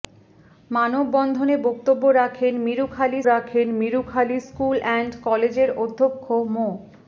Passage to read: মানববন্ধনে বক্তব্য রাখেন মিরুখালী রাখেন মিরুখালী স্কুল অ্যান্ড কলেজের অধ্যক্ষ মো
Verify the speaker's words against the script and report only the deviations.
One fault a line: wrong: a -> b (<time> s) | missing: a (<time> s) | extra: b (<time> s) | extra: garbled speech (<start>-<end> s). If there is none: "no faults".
no faults